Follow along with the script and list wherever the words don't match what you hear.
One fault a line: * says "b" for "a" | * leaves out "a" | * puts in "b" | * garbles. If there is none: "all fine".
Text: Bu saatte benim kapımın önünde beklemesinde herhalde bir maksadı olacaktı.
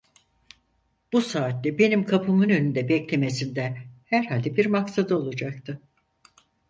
all fine